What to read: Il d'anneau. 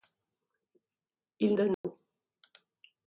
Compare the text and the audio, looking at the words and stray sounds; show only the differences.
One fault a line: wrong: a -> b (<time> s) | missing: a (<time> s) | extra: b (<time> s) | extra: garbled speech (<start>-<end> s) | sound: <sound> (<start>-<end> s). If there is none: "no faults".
sound: dropout (1.7-1.8 s)